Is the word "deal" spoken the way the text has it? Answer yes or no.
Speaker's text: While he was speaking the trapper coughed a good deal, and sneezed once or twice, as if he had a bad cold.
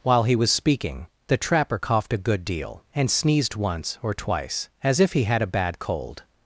yes